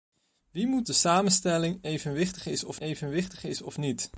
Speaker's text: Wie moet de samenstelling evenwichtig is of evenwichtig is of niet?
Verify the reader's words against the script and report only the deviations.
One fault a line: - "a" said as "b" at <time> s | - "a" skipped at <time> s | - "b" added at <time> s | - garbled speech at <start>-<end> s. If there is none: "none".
none